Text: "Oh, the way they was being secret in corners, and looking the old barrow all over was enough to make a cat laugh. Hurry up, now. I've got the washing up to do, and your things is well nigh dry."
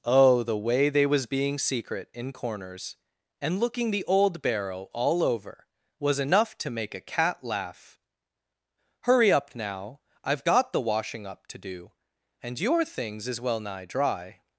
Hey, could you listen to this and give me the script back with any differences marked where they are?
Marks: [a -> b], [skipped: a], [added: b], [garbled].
"Oh, the way they was being secret in corners, and looking the old barrow all over was enough to make a cat laugh. Hurry up, now. I've got the washing up to do, and your things is well nigh dry."